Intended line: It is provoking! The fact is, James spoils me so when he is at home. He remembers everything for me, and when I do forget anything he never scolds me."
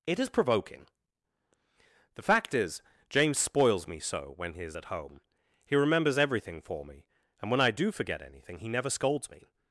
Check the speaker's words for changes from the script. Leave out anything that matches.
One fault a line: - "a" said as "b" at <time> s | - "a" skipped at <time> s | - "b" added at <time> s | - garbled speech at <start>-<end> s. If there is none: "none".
none